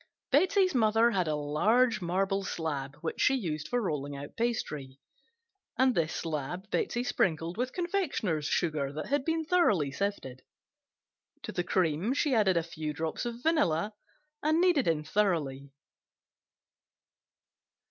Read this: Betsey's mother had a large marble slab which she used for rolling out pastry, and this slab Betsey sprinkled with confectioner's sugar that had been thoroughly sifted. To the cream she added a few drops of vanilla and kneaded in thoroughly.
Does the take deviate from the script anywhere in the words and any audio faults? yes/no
no